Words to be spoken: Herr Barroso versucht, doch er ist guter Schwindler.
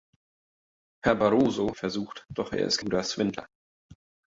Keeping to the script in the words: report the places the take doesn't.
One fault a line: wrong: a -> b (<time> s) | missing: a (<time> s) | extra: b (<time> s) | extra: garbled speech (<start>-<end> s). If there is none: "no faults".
no faults